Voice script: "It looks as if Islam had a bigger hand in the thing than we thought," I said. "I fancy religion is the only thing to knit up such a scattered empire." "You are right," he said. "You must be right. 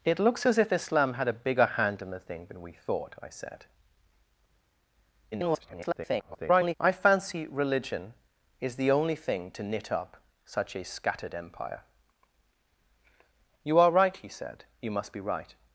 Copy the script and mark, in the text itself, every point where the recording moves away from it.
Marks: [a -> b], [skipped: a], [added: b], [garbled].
"It looks as if Islam had a bigger hand in the thing than we thought," I said. [garbled] "I fancy religion is the only thing to knit up such a scattered empire." "You are right," he said. "You must be right.